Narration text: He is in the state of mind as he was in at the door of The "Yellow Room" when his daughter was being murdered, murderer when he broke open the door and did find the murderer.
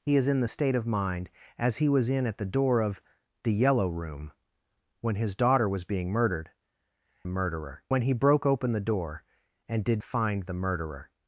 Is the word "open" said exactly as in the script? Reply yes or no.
yes